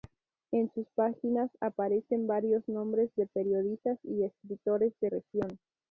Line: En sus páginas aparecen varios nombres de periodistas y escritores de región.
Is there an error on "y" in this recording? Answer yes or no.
no